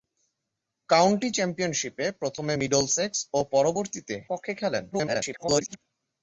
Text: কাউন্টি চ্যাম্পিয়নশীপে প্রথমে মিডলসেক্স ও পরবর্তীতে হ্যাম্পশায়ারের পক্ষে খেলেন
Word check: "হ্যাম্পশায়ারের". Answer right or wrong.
wrong